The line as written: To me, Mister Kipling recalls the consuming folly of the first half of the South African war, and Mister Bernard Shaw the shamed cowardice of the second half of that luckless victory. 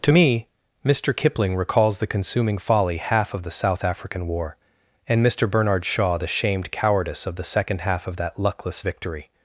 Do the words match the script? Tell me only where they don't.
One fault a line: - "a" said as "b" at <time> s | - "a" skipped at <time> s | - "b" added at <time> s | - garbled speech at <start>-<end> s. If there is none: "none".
- "of the first" skipped at 3.0 s